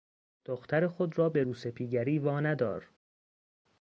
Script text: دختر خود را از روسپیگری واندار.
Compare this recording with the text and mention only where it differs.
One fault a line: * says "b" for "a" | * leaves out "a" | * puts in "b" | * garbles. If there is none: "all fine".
* says "به" for "از"